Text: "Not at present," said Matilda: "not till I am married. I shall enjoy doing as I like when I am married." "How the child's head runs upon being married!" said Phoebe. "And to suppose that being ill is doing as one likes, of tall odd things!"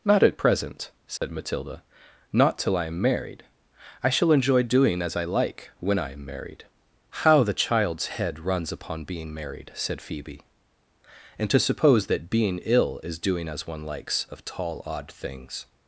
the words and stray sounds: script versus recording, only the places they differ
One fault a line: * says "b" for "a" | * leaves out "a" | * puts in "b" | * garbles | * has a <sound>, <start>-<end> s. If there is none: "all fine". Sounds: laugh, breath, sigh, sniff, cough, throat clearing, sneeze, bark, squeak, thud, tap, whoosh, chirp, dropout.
* has a dropout, 1.2-1.2 s